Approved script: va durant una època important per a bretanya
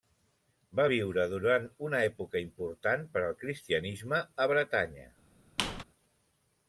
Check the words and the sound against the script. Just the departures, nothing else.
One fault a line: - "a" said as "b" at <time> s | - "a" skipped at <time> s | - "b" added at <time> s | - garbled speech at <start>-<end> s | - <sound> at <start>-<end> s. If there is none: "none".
- "viure" added at 0.9 s
- "al cristianisme" added at 3.2 s
- squeak at 5.6-5.8 s